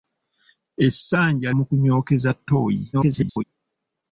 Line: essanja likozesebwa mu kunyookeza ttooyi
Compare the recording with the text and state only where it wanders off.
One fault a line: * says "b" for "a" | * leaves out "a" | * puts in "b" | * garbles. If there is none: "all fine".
* leaves out "likozesebwa"
* garbles